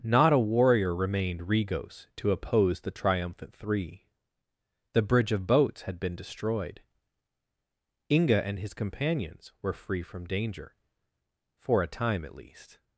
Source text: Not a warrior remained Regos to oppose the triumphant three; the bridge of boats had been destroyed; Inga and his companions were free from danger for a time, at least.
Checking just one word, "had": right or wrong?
right